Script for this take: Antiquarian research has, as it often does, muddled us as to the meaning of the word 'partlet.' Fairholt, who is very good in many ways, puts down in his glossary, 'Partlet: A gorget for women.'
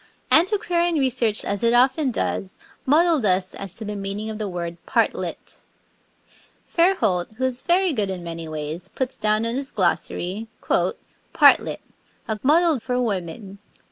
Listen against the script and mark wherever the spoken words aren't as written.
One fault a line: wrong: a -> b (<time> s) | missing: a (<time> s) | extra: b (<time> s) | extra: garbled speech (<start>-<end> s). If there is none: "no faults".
missing: has (1.4 s)
wrong: gorget -> muddled (12.4 s)